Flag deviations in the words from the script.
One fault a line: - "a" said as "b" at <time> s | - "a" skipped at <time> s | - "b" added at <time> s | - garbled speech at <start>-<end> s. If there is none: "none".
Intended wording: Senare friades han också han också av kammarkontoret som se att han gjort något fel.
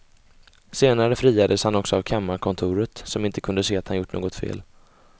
- "han också" skipped at 2.0 s
- "inte kunde" added at 3.2 s